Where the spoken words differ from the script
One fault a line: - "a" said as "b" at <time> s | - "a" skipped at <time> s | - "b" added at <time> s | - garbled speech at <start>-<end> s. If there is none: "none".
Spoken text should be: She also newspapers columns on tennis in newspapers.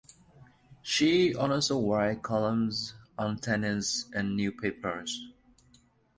- "newspapers" said as "writes" at 1.8 s